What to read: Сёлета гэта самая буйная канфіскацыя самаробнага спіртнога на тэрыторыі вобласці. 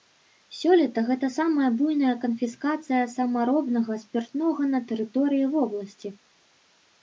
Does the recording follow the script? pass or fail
pass